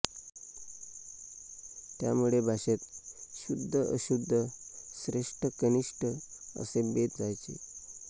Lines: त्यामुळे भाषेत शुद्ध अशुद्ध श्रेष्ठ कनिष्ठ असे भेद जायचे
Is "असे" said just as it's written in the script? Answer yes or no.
yes